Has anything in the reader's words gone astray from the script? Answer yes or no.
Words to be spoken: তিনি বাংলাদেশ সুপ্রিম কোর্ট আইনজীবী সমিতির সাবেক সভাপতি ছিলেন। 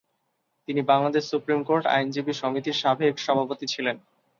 no